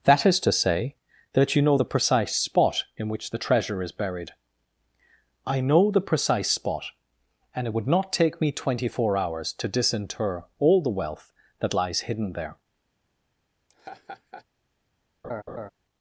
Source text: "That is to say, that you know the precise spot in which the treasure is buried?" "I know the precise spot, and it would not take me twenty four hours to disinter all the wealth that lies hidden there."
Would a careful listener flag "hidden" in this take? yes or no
no